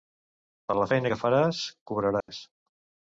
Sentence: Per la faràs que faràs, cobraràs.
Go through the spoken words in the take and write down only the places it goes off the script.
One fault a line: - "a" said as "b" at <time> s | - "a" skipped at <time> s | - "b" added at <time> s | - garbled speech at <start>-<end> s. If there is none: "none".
- "faràs" said as "feina" at 0.9 s